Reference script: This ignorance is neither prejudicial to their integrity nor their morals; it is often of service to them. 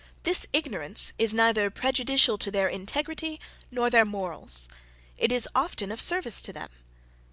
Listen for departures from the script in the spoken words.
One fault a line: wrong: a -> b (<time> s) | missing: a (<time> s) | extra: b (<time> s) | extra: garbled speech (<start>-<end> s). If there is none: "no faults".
no faults